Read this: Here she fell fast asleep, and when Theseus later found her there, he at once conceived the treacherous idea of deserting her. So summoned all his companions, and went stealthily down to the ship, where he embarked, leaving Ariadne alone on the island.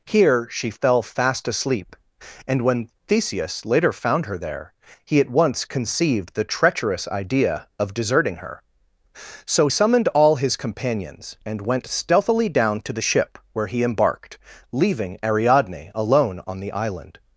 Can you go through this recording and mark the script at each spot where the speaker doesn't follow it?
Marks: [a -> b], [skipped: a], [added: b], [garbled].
Here she fell fast asleep, and when Theseus later found her there, he at once conceived the treacherous idea of deserting her. So summoned all his companions, and went stealthily down to the ship, where he embarked, leaving Ariadne alone on the island.